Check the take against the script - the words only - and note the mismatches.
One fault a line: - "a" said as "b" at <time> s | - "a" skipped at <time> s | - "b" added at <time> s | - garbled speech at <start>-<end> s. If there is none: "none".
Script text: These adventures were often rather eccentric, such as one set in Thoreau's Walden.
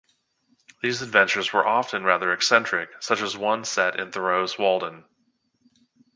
none